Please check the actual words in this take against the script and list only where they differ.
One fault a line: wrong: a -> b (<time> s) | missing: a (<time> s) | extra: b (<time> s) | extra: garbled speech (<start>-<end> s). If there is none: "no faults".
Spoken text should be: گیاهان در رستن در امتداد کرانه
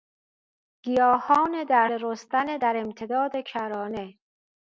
no faults